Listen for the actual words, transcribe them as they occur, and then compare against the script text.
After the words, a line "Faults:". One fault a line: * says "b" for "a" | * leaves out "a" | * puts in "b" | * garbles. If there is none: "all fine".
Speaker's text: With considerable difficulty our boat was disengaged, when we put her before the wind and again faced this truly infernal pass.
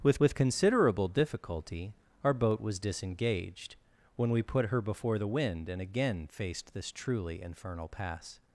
With with considerable difficulty our boat was disengaged, when we put her before the wind and again faced this truly infernal pass.
Faults:
* puts in "with"